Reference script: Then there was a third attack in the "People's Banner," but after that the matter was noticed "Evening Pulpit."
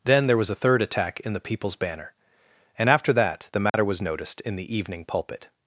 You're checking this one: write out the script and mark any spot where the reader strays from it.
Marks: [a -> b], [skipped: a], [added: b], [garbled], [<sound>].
Then there was a third attack in the "People's Banner," [but -> and] after that the matter [dropout] was noticed [added: in the] "Evening Pulpit."